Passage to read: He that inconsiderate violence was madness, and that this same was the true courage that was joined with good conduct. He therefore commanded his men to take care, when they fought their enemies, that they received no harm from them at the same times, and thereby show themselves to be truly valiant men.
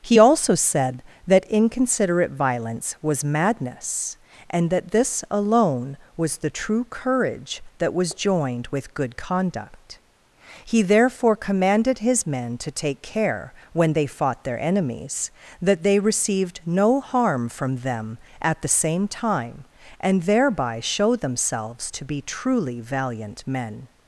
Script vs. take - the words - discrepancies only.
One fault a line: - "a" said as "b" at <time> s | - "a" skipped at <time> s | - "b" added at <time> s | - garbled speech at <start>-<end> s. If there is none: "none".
- "also said" added at 0.2 s
- "same" said as "alone" at 5.3 s
- "times" said as "time" at 19.1 s